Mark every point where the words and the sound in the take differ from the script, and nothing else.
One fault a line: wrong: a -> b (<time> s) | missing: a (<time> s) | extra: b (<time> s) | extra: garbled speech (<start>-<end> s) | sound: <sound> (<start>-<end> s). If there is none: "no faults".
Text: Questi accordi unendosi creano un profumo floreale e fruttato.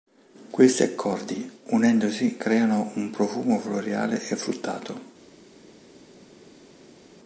no faults